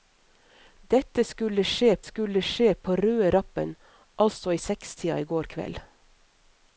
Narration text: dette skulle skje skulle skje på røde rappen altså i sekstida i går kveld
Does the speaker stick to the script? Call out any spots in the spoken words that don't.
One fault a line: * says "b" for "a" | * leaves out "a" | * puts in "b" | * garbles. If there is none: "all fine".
all fine